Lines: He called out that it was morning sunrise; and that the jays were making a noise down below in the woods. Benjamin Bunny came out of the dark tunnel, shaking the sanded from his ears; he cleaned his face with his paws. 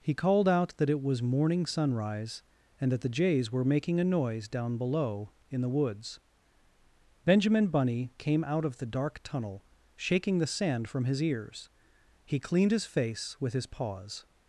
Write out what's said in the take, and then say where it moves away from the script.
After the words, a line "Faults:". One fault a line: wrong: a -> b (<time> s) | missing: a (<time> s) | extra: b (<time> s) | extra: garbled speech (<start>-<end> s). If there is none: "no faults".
He called out that it was morning sunrise; and that the jays were making a noise down below in the woods. Benjamin Bunny came out of the dark tunnel, shaking the sand from his ears; he cleaned his face with his paws.
Faults:
wrong: sanded -> sand (10.5 s)